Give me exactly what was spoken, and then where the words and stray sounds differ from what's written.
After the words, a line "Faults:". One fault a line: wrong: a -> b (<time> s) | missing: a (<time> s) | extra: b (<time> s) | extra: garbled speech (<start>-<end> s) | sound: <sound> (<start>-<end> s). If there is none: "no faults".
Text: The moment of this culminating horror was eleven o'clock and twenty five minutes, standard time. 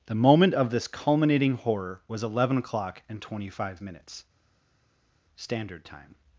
The moment of this culminating horror was eleven o'clock and twenty five minutes, standard time.
Faults:
no faults